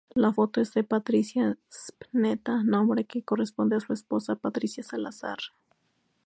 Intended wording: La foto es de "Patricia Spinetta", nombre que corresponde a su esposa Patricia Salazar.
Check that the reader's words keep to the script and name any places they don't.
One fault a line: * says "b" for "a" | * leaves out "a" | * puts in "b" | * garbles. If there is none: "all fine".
all fine